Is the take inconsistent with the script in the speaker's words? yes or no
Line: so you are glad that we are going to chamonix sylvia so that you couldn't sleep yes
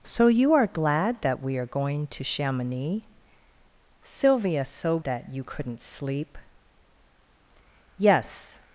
no